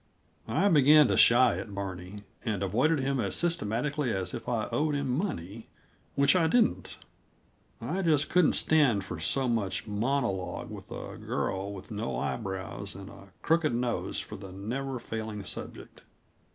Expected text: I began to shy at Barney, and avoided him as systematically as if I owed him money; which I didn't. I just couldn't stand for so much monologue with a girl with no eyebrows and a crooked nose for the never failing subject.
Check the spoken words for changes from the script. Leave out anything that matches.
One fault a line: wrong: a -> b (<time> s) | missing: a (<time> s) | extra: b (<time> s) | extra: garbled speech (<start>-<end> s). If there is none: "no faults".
no faults